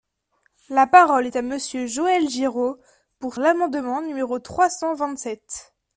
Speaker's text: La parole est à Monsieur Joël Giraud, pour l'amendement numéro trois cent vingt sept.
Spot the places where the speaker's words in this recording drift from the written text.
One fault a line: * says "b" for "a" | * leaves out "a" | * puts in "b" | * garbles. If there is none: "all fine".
all fine